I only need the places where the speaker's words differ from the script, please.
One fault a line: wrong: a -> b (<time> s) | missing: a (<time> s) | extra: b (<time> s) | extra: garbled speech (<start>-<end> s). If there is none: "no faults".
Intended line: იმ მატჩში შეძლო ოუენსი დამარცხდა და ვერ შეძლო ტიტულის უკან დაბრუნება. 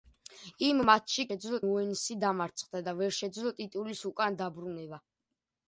no faults